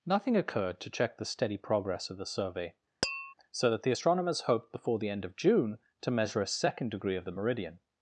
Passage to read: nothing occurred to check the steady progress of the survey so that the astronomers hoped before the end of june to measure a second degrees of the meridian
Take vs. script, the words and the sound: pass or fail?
fail